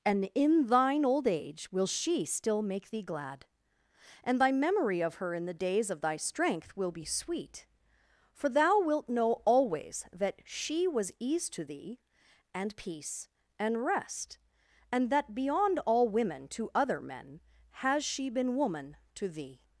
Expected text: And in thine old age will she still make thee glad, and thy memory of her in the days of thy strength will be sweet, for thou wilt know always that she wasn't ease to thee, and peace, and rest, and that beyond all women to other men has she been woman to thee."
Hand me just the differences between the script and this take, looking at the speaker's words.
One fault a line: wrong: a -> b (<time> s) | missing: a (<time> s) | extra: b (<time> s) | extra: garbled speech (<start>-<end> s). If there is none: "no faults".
wrong: wasn't -> was (10.9 s)